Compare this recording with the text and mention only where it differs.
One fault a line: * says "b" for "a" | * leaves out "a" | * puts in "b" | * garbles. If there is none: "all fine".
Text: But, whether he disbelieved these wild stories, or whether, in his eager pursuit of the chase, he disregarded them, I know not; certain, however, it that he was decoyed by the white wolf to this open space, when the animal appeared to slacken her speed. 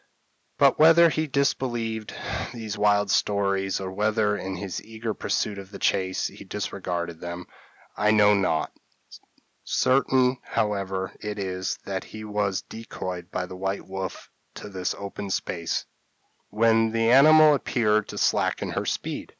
* puts in "is"